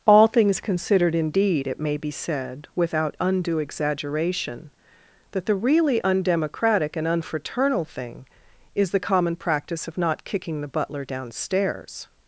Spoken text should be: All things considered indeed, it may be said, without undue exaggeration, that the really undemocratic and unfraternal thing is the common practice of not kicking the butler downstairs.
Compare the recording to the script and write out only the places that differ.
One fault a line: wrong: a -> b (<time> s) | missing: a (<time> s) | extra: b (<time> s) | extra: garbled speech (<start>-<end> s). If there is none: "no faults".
no faults